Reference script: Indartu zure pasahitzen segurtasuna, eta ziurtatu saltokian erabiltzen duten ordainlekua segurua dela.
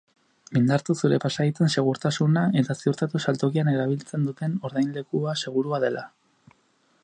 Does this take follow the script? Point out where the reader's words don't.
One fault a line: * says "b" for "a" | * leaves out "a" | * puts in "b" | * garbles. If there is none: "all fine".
all fine